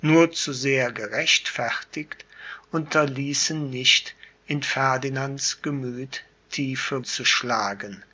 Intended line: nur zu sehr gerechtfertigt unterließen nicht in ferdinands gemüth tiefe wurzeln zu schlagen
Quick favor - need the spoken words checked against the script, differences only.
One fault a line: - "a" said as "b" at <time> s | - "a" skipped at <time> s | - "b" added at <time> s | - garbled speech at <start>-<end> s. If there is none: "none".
- "wurzeln" skipped at 7.1 s